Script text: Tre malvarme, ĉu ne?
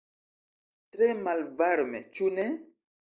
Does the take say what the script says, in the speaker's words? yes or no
yes